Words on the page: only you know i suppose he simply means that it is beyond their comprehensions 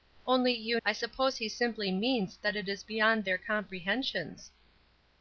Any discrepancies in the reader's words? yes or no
yes